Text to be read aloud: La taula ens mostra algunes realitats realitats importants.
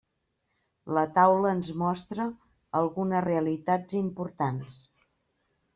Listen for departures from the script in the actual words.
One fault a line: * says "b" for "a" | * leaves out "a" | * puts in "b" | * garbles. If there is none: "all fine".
* leaves out "realitats"